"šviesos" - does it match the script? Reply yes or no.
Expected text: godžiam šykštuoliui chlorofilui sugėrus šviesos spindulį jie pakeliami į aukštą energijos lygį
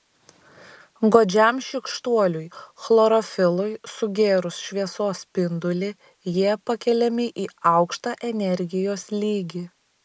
yes